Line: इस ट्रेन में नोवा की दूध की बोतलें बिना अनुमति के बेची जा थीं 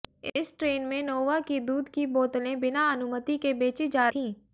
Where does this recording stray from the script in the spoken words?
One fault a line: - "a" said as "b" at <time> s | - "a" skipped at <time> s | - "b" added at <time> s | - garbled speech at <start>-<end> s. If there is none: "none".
none